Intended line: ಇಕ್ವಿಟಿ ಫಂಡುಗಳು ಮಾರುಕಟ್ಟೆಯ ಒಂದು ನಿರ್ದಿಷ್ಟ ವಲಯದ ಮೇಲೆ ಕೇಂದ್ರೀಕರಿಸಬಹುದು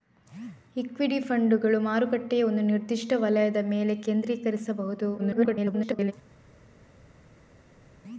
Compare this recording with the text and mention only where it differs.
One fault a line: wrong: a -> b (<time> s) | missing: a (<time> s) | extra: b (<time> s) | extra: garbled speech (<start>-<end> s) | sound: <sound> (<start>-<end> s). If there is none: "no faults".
extra: garbled speech (5.2-6.1 s)